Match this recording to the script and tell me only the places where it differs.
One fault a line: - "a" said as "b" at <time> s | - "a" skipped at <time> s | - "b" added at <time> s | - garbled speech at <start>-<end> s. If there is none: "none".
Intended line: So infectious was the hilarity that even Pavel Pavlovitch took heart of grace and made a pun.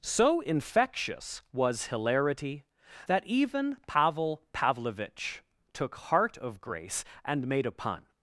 - "the" skipped at 1.9 s